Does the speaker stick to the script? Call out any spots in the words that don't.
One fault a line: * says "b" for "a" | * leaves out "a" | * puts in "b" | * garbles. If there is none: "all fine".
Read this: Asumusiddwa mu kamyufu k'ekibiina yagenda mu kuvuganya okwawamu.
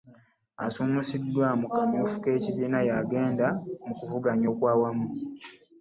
all fine